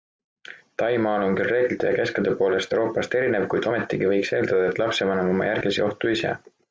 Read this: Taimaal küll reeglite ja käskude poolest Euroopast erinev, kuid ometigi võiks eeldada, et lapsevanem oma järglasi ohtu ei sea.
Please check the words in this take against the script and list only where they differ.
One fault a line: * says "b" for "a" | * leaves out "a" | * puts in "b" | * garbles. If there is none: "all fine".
* puts in "on"